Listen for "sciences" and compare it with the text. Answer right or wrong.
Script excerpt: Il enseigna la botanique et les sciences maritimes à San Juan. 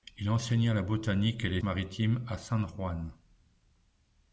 wrong